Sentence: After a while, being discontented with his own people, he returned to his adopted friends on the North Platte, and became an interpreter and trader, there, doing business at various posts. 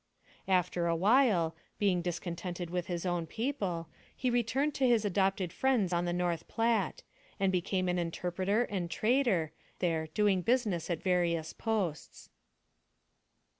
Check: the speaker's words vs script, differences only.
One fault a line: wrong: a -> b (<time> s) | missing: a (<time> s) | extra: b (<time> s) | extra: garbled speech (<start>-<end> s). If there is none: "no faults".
no faults